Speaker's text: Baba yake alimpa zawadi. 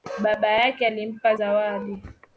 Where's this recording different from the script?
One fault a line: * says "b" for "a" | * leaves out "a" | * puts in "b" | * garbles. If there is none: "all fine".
all fine